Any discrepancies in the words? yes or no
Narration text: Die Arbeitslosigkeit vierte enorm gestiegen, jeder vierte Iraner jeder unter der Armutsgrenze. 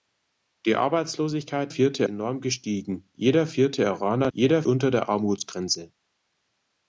no